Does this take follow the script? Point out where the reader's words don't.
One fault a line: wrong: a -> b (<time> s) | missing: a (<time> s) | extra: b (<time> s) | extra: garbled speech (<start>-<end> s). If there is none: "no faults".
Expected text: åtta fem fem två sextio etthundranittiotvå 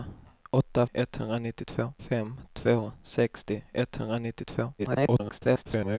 wrong: fem -> etthundranittiotvå (0.9 s)
extra: garbled speech (4.8-6.0 s)